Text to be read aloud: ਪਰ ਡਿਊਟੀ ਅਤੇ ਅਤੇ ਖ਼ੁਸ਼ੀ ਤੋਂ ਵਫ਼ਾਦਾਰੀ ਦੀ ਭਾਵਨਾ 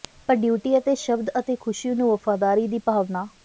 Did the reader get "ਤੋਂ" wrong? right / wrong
wrong